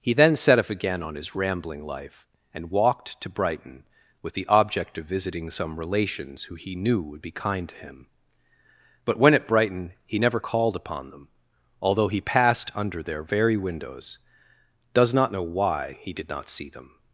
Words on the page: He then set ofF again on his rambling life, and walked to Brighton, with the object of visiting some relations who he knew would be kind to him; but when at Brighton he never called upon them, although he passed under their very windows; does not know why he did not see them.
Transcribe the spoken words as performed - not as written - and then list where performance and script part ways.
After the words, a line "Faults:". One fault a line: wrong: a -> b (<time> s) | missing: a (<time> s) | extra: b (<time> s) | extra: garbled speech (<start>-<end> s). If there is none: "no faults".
He then set ofF again on his rambling life, and walked to Brighton, with the object of visiting some relations who he knew would be kind to him; but when at Brighton he never called upon them, although he passed under their very windows; does not know why he did not see them.
Faults:
no faults